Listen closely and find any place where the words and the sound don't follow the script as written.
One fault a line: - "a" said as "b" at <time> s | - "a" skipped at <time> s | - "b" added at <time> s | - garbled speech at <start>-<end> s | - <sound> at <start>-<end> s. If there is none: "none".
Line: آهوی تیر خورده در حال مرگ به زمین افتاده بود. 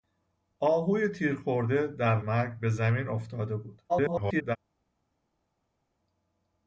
- "حال" skipped at 2.2 s
- garbled speech at 3.9-4.6 s